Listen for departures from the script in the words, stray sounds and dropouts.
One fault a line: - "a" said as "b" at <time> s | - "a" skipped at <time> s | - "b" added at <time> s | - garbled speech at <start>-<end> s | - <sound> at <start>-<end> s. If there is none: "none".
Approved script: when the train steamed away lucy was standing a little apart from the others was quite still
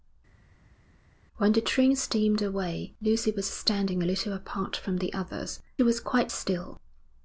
none